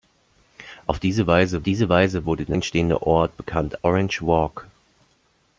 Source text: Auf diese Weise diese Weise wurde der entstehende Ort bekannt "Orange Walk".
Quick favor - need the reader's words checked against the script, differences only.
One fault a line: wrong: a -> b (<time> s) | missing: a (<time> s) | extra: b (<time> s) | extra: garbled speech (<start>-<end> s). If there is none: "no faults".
no faults